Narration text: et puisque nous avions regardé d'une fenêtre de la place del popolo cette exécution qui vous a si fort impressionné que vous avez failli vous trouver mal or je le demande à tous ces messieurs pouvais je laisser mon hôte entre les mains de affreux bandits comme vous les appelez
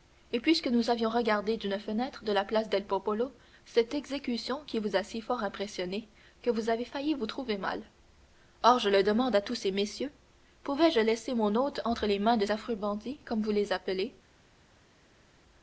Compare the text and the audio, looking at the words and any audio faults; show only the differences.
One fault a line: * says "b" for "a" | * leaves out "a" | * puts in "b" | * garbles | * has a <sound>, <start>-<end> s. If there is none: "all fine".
all fine